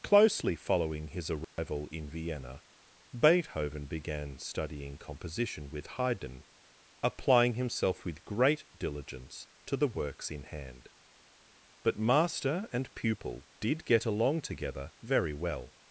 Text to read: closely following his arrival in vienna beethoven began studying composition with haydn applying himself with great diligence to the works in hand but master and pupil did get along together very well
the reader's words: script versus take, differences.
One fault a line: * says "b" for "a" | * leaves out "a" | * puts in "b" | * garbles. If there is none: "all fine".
all fine